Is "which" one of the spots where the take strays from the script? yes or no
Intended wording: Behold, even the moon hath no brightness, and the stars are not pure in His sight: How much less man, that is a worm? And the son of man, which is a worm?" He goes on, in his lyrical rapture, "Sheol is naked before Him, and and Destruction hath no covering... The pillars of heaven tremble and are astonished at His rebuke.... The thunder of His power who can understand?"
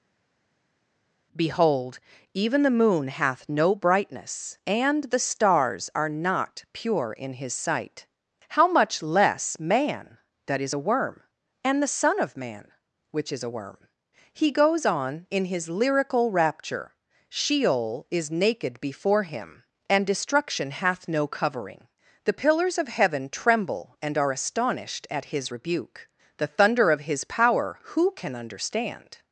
no